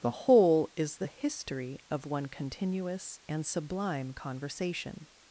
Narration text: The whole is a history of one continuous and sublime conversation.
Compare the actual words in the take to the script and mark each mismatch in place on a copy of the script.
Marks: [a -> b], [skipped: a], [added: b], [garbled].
The whole is [a -> the] history of one continuous and sublime conversation.